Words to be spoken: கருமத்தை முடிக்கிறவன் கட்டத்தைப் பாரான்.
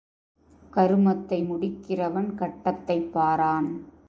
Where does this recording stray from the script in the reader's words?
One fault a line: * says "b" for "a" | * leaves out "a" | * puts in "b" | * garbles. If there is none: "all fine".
all fine